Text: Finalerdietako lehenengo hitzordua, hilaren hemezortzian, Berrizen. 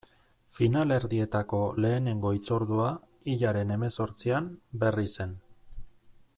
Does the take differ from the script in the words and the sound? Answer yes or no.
no